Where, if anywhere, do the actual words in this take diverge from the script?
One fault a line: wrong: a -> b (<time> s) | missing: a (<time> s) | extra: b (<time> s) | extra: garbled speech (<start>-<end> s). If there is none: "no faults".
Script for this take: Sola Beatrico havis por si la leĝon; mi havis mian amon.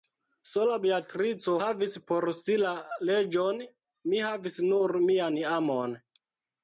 extra: nur (4.7 s)